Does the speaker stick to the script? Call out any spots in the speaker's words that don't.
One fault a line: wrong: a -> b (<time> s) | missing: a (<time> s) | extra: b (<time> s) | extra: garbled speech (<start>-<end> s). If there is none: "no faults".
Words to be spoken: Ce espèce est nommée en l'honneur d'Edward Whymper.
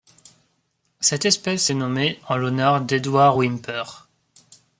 wrong: Ce -> Cette (1.0 s)